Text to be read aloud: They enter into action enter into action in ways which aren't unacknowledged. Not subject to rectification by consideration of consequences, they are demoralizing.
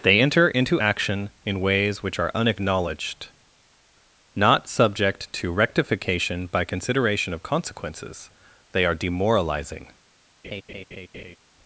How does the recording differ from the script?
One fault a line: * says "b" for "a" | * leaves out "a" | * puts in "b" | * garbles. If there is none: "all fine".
* leaves out "enter into action"
* says "are" for "aren't"